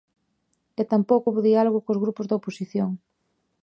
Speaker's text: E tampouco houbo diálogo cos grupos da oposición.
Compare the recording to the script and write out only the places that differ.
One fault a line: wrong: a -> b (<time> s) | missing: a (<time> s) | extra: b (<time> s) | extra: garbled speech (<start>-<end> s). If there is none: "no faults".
no faults